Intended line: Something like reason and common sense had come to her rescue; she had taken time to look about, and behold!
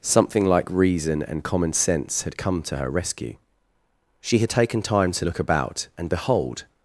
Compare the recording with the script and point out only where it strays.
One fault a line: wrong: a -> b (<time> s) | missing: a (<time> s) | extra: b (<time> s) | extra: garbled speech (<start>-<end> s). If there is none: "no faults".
no faults